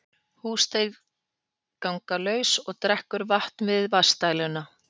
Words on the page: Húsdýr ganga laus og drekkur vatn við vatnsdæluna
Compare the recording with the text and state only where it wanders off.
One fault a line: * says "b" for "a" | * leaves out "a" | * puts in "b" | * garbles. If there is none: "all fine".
all fine